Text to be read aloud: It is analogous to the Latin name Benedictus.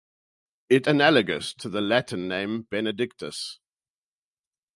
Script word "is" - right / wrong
wrong